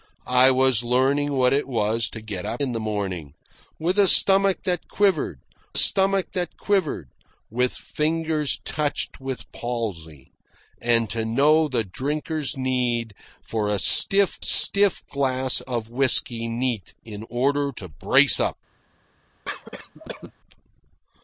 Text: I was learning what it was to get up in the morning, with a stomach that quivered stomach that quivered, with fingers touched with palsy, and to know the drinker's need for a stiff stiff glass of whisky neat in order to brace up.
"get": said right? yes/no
yes